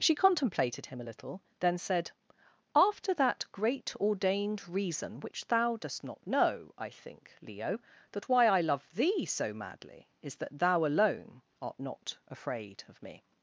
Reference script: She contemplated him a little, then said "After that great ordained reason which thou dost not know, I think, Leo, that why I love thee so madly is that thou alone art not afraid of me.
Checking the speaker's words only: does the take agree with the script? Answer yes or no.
yes